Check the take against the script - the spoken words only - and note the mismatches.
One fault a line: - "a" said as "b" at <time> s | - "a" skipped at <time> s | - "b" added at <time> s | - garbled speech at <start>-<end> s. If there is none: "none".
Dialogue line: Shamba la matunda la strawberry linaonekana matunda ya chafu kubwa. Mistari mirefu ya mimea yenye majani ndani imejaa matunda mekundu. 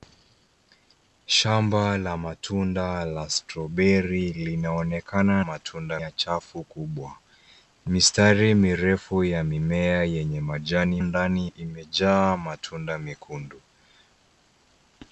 none